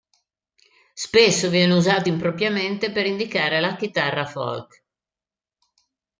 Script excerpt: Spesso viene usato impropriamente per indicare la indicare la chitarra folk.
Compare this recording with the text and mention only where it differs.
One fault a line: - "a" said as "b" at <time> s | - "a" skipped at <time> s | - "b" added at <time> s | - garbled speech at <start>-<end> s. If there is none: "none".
- "indicare la" skipped at 3.7 s